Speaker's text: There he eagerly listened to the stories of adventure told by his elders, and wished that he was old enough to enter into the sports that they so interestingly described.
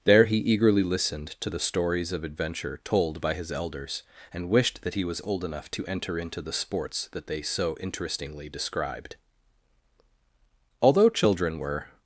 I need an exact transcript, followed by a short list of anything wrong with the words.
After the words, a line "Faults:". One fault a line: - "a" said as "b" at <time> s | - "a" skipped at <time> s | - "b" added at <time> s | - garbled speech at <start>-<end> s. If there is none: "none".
There he eagerly listened to the stories of adventure told by his elders, and wished that he was old enough to enter into the sports that they so interestingly described. Although children were
Faults:
- "Although children were" added at 10.8 s